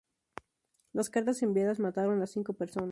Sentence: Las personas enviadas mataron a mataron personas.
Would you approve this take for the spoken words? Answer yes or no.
no